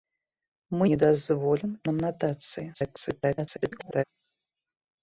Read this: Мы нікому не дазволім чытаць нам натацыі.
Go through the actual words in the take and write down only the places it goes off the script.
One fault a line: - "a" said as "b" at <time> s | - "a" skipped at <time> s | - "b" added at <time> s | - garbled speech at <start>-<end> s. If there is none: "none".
- "нікому" skipped at 0.8 s
- "чытаць" skipped at 1.7 s
- garbled speech at 2.7-4.0 s